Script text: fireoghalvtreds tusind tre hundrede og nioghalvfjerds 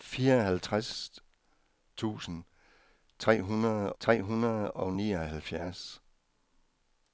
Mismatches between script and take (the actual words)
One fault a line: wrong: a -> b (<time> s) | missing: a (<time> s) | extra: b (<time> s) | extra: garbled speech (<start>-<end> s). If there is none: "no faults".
extra: tre hundrede (4.0 s)